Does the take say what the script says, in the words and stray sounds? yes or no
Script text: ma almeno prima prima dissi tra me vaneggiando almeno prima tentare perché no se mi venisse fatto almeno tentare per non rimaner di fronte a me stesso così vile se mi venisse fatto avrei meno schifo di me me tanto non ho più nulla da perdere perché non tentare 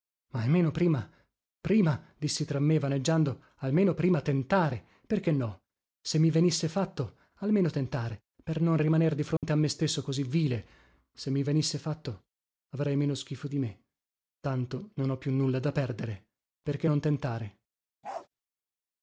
no